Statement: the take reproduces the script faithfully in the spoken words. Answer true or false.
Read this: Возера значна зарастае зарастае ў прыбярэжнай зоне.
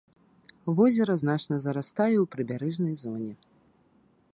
false